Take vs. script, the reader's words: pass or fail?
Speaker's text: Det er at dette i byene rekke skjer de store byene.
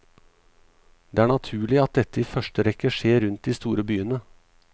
fail